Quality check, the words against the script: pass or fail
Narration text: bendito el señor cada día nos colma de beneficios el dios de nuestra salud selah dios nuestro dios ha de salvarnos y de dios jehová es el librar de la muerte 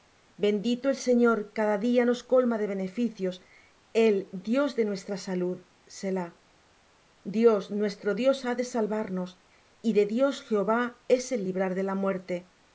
pass